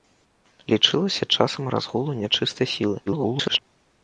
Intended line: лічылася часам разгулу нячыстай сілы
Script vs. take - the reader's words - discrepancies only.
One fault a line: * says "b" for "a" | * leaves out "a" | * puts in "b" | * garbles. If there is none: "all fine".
* garbles